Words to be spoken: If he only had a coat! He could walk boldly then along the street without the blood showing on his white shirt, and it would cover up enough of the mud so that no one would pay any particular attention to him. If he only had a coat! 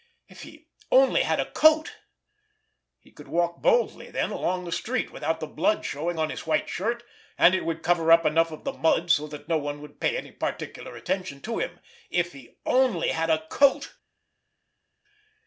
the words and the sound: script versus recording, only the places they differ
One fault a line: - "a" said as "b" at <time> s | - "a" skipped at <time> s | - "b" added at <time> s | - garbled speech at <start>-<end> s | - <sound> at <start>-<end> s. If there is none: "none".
none